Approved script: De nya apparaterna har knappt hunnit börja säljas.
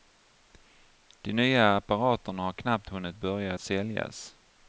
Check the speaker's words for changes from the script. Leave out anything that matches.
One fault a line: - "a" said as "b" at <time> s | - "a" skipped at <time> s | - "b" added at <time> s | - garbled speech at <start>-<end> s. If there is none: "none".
none